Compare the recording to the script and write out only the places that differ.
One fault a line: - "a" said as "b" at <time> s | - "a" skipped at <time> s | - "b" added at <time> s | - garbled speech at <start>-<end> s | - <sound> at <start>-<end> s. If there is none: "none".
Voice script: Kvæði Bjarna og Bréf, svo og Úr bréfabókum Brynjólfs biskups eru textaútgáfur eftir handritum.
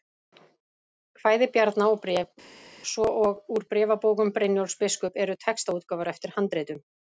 none